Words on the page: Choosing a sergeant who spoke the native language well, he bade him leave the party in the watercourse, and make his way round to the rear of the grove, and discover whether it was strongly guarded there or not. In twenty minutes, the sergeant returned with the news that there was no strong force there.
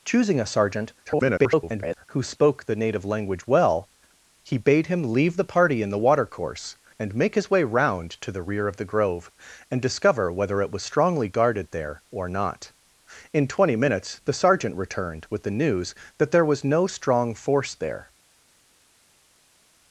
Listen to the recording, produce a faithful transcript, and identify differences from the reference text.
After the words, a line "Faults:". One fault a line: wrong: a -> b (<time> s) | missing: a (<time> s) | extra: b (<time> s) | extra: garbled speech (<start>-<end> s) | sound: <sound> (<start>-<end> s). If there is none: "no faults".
Choosing a sergeant [garbled] who spoke the native language well, he bade him leave the party in the watercourse, and make his way round to the rear of the grove, and discover whether it was strongly guarded there or not. In twenty minutes, the sergeant returned with the news that there was no strong force there.
Faults:
extra: garbled speech (1.1-2.0 s)